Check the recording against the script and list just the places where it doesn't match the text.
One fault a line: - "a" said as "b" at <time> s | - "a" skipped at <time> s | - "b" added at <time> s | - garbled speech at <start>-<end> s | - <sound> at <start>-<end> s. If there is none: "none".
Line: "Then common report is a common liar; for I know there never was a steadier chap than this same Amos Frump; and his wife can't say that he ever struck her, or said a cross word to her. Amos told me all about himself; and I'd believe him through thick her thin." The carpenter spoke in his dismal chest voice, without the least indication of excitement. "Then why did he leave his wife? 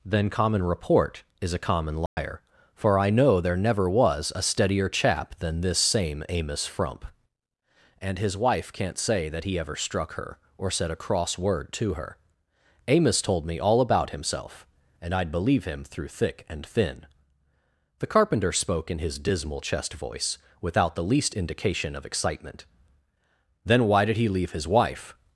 - dropout at 2.1-2.2 s
- "her" said as "and" at 16.5 s